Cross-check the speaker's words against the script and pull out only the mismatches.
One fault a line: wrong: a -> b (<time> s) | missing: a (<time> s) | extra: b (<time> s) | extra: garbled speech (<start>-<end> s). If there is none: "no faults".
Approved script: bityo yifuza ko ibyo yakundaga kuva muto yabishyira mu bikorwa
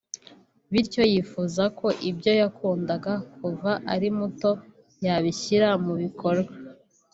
extra: ari (3.9 s)